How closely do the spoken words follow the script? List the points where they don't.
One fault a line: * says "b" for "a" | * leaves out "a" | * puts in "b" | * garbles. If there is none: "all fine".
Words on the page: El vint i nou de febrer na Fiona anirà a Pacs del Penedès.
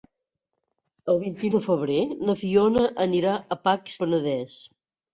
* leaves out "nou"
* leaves out "del"